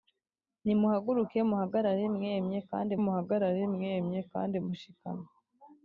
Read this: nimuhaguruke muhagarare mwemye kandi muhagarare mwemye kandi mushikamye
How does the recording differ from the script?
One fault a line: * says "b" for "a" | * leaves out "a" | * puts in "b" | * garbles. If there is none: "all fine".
all fine